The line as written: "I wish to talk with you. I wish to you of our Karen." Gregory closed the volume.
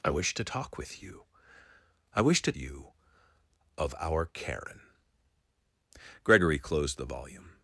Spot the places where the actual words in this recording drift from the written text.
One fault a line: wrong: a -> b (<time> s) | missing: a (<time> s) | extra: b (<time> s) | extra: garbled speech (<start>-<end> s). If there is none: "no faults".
no faults